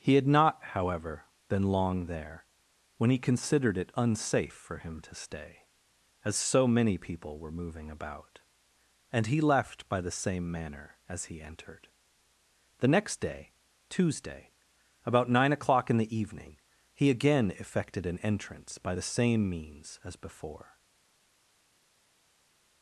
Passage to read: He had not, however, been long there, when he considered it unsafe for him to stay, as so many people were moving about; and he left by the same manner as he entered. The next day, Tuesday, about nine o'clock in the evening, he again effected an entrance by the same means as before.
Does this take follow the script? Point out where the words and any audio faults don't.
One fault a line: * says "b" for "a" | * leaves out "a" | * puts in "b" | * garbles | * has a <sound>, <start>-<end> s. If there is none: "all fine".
all fine